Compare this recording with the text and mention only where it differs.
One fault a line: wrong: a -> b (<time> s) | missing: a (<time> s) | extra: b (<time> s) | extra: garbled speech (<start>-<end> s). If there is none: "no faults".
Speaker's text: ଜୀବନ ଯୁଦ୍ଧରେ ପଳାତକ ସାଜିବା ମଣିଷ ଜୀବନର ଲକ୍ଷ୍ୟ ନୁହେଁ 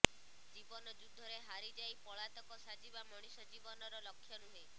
extra: ହାରିଯାଇ (1.4 s)